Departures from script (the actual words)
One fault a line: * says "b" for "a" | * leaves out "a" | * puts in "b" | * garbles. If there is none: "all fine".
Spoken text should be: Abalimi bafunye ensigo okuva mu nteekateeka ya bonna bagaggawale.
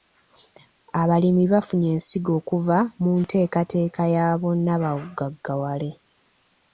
all fine